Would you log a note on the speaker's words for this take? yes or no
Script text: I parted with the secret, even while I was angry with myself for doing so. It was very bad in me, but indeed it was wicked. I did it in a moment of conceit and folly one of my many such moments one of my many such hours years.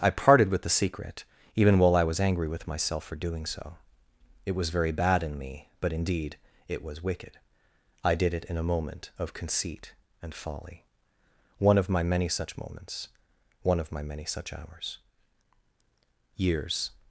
no